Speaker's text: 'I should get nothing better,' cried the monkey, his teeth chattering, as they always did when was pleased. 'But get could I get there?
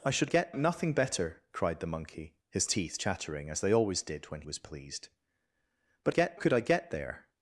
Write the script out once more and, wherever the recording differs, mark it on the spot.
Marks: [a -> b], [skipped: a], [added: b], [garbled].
'I should get nothing better,' cried the monkey, his teeth chattering, as they always did when was pleased. 'But get could I get there?